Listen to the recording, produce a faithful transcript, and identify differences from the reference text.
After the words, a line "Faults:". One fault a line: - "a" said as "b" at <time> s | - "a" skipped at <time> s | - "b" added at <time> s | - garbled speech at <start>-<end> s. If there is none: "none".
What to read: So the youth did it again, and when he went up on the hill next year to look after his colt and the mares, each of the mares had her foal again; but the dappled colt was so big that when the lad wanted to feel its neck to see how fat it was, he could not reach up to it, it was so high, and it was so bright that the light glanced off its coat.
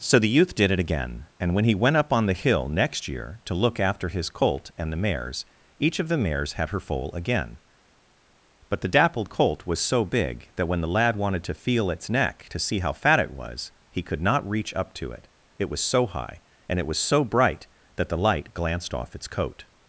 So the youth did it again, and when he went up on the hill next year to look after his colt and the mares, each of the mares had her foal again; but the dappled colt was so big that when the lad wanted to feel its neck to see how fat it was, he could not reach up to it, it was so high, and it was so bright that the light glanced off its coat.
Faults:
none